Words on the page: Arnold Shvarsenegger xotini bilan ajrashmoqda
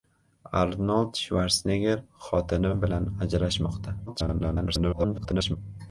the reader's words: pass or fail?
fail